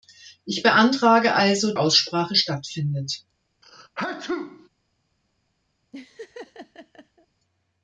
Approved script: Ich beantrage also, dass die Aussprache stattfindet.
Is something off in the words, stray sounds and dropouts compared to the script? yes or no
yes